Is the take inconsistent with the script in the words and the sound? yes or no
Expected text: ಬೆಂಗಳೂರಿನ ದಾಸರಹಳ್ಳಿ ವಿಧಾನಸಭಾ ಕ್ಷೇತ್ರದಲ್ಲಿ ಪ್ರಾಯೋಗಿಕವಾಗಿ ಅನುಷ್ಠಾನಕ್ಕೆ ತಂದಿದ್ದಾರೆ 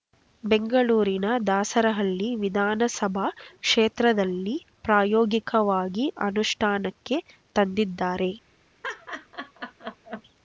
yes